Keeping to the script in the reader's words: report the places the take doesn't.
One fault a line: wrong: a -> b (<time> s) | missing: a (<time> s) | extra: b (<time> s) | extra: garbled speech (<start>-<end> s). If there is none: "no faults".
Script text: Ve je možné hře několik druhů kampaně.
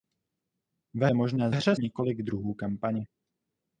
no faults